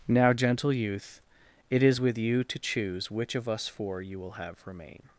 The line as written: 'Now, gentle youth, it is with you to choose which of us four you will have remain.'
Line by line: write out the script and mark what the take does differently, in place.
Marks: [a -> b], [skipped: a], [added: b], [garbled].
'Now, gentle youth, it is with you to choose which of us four you will have remain.'